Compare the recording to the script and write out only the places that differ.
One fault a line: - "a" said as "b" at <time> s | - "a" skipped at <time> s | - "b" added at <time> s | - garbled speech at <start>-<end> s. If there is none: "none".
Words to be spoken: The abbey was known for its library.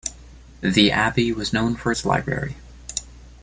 none